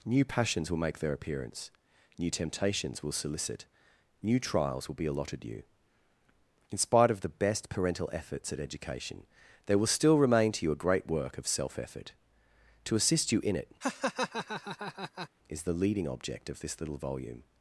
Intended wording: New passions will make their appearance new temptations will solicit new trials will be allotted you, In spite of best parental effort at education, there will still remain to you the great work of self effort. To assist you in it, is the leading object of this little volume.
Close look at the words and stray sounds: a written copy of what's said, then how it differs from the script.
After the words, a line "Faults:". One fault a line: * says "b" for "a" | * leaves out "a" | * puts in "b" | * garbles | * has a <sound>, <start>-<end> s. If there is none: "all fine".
New passions will make their appearance new temptations will solicit new trials will be allotted you, In spite of the best parental efforts at education, there will still remain to you a great work of self effort. To assist you in it, is the leading object of this little volume.
Faults:
* puts in "the"
* says "efforts" for "effort"
* says "a" for "the"
* has a laugh, 13.8-15.3 s